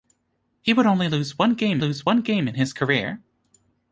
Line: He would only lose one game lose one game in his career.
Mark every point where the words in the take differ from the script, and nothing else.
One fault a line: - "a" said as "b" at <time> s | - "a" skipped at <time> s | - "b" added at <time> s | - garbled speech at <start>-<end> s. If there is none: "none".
none